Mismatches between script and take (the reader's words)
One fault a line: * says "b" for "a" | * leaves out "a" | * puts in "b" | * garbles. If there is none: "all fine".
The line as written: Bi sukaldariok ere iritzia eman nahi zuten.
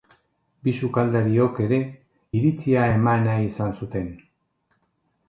* puts in "izan"